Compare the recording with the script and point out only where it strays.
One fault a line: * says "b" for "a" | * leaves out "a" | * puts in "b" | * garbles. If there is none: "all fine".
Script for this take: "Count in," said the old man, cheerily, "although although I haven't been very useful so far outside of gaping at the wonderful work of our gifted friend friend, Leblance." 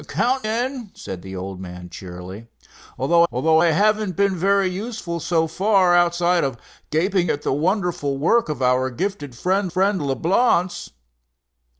all fine